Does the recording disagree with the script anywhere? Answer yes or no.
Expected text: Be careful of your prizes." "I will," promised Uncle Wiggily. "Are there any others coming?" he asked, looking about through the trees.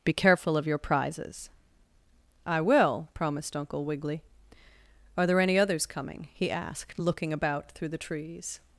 no